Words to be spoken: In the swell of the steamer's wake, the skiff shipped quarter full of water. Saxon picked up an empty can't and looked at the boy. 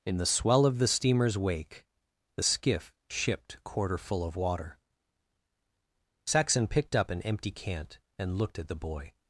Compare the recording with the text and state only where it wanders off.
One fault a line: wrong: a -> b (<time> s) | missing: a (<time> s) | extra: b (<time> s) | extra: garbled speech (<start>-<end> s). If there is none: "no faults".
no faults